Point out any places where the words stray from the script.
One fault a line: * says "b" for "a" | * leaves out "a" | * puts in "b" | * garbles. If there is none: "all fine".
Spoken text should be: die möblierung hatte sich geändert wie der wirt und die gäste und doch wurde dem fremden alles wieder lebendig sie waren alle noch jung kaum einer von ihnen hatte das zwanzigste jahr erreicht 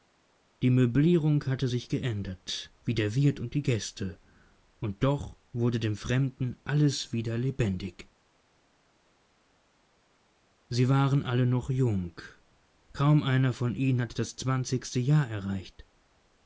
all fine